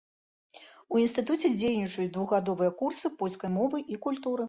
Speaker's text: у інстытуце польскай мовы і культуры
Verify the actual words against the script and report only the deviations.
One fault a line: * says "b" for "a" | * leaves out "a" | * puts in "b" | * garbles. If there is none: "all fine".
* puts in "дзейнічаюць двухгадовыя курсы"